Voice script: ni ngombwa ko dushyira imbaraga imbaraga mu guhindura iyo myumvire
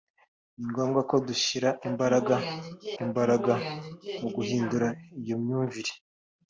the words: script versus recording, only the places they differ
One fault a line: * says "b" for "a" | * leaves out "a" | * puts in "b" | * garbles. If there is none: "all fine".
all fine